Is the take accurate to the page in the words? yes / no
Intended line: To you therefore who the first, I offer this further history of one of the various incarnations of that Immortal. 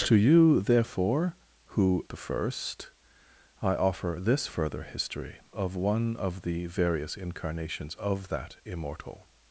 yes